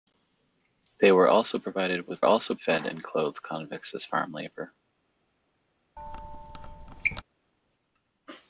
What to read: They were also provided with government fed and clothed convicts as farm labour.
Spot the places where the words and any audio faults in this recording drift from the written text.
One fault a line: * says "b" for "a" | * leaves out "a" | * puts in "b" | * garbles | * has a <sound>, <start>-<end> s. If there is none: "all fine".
* says "also" for "government"
* has a squeak, 6.0-7.2 s